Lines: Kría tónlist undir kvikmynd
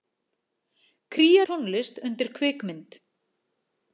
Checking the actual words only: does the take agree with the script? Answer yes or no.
yes